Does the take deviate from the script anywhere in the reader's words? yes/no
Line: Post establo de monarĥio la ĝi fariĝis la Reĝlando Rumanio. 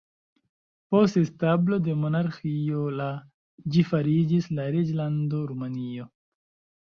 no